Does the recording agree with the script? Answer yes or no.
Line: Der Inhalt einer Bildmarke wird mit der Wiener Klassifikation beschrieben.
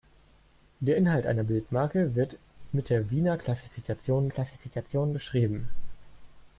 no